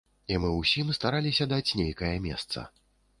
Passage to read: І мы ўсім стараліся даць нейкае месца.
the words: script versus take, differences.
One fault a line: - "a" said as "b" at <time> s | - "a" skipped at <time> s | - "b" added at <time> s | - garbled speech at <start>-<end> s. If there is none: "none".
none